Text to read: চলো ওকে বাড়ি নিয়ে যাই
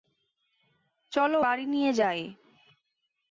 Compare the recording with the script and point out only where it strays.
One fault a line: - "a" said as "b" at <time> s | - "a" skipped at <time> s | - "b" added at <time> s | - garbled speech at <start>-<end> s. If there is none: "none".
- "ওকে" skipped at 1.4 s